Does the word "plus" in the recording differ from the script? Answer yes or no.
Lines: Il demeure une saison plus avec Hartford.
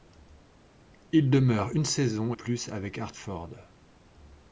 no